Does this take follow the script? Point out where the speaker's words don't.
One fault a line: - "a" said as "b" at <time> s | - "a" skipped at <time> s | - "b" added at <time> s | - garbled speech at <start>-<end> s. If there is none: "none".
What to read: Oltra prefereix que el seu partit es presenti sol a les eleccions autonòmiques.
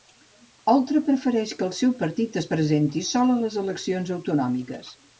none